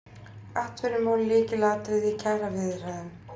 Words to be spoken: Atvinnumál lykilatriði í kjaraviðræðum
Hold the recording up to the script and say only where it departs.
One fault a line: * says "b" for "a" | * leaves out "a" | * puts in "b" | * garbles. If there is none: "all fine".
all fine